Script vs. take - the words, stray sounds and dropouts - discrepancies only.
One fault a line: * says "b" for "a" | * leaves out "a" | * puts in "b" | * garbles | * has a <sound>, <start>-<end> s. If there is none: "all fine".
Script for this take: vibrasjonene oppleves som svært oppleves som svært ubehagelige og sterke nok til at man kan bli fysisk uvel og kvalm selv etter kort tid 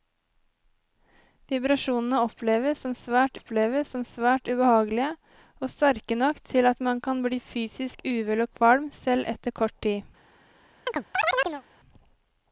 * has a chirp, 10.9-11.6 s